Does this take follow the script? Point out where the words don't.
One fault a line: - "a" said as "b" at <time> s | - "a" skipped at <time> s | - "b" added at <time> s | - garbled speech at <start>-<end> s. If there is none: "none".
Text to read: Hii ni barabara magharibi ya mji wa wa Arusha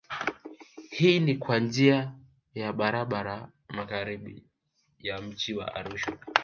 - "kwa njia ya" added at 1.4 s
- "wa" skipped at 5.7 s